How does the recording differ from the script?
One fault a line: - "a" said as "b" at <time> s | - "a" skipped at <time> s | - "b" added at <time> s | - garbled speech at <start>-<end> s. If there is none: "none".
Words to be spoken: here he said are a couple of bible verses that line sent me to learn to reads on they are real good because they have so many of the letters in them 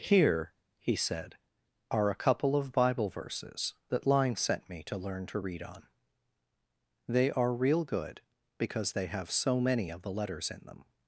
- "reads" said as "read" at 5.4 s